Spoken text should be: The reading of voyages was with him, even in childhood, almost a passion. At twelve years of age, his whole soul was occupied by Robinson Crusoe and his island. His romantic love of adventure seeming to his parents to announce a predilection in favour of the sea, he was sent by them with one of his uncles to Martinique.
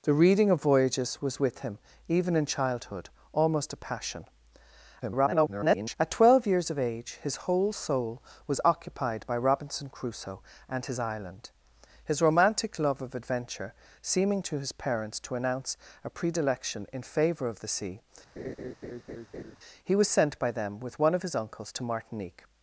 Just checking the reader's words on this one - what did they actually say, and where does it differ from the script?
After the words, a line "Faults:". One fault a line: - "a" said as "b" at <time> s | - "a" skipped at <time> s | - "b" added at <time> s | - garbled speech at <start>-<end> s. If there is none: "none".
The reading of voyages was with him, even in childhood, almost a passion. [garbled] At twelve years of age, his whole soul was occupied by Robinson Crusoe and his island. His romantic love of adventure seeming to his parents to announce a predilection in favour of the sea, he was sent by them with one of his uncles to Martinique.
Faults:
- garbled speech at 5.0-6.0 s